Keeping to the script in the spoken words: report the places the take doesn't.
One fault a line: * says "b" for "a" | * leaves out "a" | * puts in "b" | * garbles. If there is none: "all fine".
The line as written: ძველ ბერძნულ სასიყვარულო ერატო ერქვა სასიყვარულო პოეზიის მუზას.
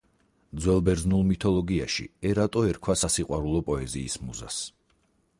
* says "მითოლოგიაში" for "სასიყვარულო"